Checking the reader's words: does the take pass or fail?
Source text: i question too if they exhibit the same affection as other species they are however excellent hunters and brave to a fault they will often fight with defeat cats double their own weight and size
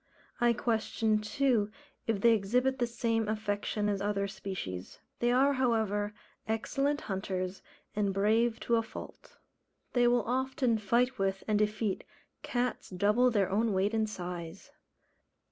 fail